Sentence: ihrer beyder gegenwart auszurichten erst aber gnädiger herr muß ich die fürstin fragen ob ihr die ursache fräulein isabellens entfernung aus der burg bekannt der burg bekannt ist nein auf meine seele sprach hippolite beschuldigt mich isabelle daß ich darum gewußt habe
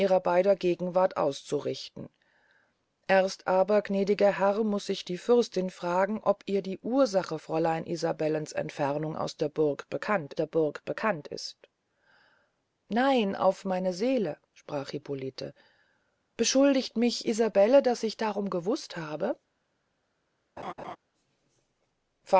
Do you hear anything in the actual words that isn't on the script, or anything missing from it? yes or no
no